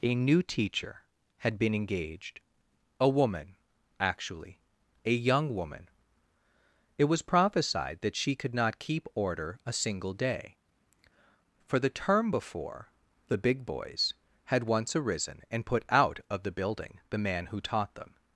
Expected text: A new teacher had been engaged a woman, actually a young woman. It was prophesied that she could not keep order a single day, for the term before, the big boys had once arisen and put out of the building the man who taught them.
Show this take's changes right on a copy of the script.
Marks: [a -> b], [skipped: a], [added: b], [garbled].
A new teacher had been engaged a woman, actually a young woman. It was prophesied that she could not keep order a single day, for the term before, the big boys had once arisen and put out of the building the man who taught them.